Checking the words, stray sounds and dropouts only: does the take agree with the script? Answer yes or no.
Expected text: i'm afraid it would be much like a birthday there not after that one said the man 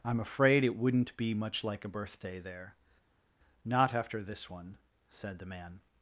no